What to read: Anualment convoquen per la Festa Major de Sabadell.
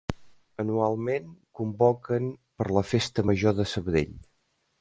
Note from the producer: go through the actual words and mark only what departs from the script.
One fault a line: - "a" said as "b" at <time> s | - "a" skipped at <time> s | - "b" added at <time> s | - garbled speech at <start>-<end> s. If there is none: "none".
none